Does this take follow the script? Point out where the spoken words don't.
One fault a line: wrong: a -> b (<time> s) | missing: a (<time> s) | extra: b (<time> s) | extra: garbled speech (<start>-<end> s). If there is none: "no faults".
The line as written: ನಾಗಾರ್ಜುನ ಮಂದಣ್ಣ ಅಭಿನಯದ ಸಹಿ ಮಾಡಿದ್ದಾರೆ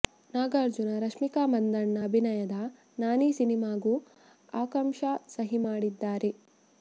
extra: ರಶ್ಮಿಕಾ (1.0 s)
extra: ನಾನಿ ಸಿನಿಮಾಗೂ ಆಕಾಂಕ್ಷಾ (3.0 s)